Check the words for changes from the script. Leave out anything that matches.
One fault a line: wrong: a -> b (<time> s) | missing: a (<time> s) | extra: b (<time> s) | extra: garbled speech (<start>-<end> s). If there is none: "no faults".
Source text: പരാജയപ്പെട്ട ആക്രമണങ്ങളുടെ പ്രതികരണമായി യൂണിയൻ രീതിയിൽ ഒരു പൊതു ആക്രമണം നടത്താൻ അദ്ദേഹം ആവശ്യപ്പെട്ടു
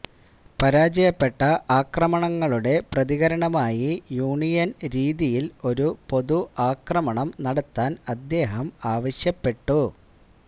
no faults